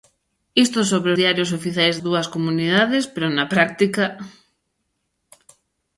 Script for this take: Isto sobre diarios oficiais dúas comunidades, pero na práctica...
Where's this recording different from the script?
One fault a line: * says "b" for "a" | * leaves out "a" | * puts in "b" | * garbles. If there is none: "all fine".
all fine